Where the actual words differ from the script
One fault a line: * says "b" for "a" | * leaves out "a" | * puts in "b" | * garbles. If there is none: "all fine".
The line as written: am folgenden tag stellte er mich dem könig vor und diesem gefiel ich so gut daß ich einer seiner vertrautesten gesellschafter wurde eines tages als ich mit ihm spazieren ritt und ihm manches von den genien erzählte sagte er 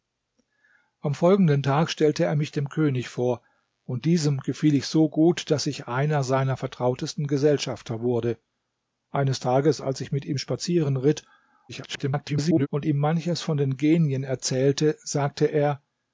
* garbles